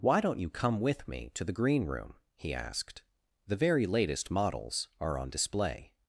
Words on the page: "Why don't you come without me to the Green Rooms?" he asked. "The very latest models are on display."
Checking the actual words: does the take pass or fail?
fail